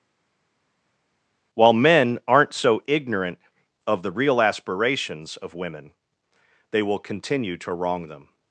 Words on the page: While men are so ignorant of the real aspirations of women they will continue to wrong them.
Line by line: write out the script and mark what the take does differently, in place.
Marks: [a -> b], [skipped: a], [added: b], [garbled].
While men [are -> aren't] so ignorant of the real aspirations of women they will continue to wrong them.